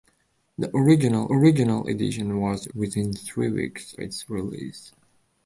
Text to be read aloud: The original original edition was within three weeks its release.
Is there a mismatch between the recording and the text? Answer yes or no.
no